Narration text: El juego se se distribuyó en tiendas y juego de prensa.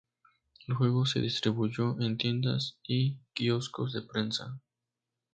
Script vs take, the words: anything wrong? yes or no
yes